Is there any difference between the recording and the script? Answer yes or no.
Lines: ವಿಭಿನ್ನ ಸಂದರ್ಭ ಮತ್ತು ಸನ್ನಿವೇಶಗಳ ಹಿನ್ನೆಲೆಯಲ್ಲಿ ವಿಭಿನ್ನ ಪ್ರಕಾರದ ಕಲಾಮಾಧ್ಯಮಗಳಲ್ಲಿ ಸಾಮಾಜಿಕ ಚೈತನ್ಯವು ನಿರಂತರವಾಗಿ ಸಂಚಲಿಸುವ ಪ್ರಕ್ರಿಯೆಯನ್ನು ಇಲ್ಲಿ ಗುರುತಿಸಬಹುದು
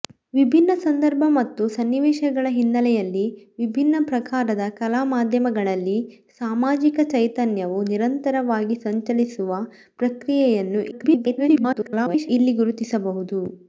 yes